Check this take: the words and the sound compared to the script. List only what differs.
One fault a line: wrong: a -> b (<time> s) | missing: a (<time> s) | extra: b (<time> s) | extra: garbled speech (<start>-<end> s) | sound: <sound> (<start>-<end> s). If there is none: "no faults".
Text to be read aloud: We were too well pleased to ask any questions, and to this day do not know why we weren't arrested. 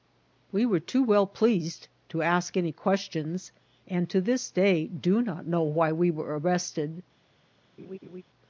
wrong: weren't -> were (6.1 s)
sound: laugh (7.8-8.2 s)